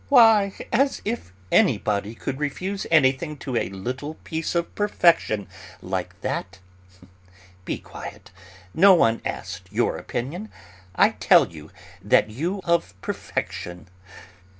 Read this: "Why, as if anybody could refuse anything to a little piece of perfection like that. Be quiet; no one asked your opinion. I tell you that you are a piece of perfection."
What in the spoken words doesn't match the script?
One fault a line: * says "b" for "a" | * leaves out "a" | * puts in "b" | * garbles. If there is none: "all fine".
* leaves out "are a piece"